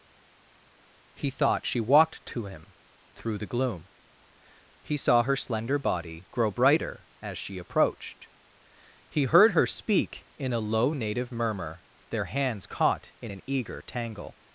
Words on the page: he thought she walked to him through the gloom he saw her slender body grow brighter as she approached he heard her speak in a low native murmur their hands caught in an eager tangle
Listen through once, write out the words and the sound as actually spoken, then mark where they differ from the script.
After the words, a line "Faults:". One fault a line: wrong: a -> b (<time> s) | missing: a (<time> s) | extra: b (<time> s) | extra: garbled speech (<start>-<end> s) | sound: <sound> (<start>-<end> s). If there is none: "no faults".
he thought she walked to him through the gloom he saw her slender body grow brighter as she approached he heard her speak in a low native murmur their hands caught in an eager tangle
Faults:
no faults